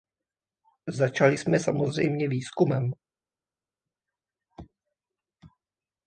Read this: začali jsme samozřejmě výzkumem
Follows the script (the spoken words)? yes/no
yes